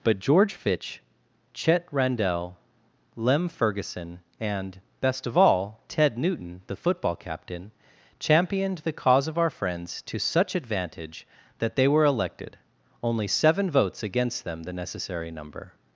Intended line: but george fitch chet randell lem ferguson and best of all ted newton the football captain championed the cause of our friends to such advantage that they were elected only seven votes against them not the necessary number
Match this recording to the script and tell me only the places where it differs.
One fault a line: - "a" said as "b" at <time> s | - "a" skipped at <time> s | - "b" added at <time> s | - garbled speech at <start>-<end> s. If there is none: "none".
- "not" skipped at 14.6 s